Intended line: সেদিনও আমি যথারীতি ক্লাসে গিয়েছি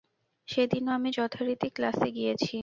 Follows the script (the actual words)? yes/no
yes